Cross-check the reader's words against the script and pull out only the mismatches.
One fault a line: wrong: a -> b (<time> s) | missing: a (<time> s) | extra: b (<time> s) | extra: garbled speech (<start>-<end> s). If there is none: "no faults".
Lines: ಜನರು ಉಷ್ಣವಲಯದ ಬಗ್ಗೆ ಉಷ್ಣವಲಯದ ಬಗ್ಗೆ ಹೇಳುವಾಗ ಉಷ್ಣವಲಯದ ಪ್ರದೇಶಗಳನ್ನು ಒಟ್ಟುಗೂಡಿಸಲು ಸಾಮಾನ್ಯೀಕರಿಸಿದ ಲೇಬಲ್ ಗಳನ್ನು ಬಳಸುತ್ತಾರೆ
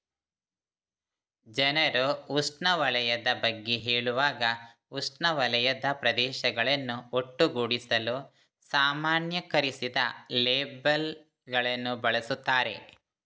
missing: ಉಷ್ಣವಲಯದ ಬಗ್ಗೆ (3.8 s)